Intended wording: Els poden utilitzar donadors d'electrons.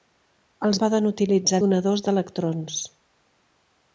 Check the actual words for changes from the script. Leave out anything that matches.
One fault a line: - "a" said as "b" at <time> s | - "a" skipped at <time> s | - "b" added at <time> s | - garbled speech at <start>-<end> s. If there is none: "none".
none